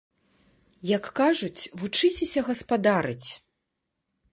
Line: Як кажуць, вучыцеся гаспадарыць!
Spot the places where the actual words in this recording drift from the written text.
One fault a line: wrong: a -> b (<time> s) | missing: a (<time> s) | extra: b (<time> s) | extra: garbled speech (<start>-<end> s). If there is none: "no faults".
no faults